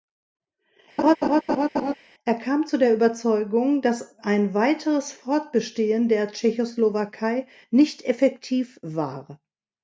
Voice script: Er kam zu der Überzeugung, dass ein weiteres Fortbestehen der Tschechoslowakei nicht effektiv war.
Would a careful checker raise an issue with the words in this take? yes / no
no